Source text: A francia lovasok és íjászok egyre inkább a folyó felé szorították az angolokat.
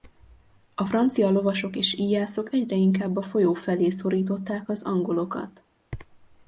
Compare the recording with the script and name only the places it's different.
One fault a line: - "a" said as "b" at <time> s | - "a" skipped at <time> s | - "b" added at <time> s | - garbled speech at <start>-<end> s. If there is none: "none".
none